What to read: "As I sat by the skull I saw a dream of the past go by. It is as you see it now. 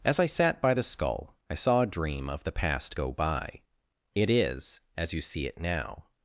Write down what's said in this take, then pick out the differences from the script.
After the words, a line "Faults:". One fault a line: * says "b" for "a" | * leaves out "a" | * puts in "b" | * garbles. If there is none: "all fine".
"As I sat by the skull I saw a dream of the past go by. It is as you see it now.
Faults:
all fine